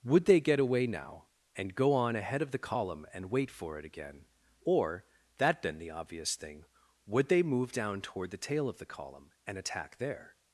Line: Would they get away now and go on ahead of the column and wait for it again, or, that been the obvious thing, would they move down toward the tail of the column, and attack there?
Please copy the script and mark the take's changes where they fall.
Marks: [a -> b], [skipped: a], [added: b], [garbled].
Would they get away now and go on ahead of the column and wait for it again, or, that been the obvious thing, would they move down toward the tail of the column, and attack there?